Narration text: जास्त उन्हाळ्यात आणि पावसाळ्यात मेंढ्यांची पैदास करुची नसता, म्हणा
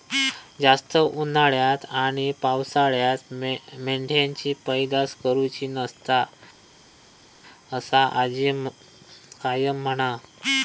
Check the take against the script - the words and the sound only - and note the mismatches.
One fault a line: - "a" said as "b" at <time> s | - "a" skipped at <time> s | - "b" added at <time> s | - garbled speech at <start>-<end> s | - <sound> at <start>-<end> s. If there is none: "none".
- "असा आजी कायम" added at 7.7 s